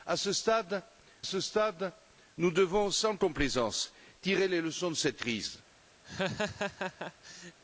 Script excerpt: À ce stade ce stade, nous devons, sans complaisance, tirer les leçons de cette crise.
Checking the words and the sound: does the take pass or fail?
fail